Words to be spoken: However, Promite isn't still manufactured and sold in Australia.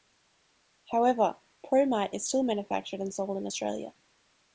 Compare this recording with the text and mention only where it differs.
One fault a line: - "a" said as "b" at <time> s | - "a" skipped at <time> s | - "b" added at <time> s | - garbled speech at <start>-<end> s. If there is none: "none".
- "isn't" said as "is" at 2.1 s